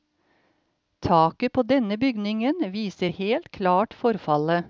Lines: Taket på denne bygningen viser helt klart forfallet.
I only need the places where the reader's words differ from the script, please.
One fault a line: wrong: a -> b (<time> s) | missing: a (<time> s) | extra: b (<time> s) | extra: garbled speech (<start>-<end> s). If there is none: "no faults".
no faults